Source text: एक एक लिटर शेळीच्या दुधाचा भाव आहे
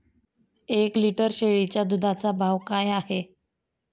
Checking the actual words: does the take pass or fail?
fail